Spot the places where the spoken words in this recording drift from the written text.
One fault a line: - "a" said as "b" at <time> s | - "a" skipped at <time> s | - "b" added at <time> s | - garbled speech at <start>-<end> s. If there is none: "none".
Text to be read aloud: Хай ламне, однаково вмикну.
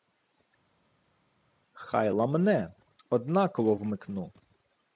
none